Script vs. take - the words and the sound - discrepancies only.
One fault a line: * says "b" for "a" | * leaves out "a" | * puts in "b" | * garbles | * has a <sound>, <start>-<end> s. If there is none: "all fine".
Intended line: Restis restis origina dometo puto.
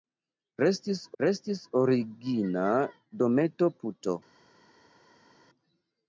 all fine